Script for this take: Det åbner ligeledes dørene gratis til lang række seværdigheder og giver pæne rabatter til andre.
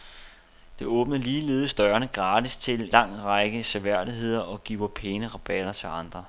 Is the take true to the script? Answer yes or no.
yes